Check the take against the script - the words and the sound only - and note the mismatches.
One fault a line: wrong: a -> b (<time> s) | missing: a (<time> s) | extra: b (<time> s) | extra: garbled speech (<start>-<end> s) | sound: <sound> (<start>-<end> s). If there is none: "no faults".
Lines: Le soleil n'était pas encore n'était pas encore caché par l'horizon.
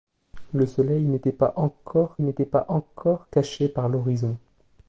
no faults